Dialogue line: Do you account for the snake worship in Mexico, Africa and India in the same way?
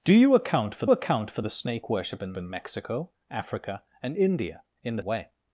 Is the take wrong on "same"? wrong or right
wrong